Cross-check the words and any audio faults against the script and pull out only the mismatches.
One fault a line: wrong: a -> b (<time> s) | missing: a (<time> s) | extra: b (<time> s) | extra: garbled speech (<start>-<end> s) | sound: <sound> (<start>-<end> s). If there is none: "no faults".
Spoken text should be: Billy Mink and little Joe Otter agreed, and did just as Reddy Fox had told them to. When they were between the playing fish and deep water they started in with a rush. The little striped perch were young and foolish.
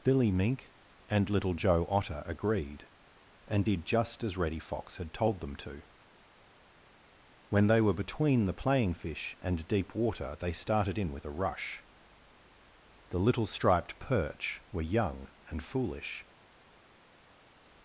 no faults